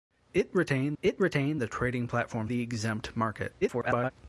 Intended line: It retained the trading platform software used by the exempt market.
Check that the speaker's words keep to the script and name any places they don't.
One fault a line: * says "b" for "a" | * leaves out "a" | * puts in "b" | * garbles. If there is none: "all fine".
* puts in "it retained"
* leaves out "software used by"
* garbles